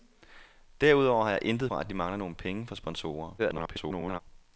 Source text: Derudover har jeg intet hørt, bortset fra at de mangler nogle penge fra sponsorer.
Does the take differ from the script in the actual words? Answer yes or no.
yes